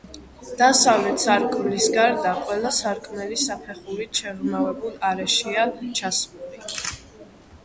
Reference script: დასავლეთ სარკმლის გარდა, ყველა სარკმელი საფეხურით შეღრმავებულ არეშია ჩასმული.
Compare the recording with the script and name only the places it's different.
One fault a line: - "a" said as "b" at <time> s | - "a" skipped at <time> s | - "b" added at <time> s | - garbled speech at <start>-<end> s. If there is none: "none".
none